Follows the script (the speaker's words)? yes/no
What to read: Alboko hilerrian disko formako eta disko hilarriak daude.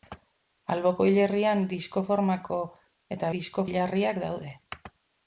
yes